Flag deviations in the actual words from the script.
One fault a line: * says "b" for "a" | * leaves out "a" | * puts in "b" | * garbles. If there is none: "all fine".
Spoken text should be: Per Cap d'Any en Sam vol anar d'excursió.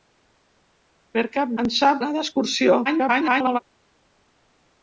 * leaves out "d'Any"
* leaves out "vol"
* garbles